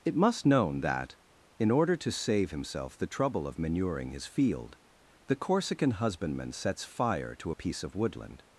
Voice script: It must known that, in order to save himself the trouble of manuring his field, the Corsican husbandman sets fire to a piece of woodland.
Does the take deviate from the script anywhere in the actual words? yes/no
no